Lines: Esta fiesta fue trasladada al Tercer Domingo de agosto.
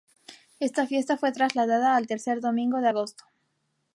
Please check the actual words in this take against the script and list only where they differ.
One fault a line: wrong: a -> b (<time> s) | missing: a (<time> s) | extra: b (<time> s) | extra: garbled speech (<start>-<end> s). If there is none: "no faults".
no faults